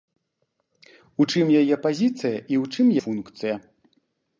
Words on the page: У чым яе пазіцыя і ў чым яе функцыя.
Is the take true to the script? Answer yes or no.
no